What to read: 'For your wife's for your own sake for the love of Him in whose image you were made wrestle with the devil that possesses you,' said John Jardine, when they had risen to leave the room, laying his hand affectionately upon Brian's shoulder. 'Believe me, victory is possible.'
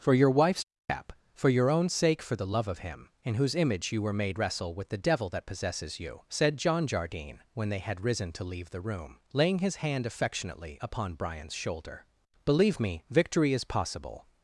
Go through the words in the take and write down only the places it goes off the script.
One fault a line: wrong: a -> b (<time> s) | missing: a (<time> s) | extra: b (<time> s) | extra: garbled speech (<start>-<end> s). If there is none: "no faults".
extra: cap (0.9 s)